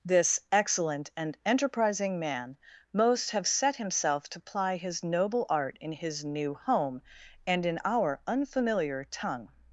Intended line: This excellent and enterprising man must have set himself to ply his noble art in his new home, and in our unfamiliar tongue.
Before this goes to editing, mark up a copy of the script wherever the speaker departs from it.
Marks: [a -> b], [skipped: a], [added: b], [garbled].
This excellent and enterprising man [must -> most] have set himself to ply his noble art in his new home, and in our unfamiliar tongue.